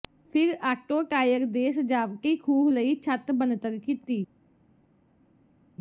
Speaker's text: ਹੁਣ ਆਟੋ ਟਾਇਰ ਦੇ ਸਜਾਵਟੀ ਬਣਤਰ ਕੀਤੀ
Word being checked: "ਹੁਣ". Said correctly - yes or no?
no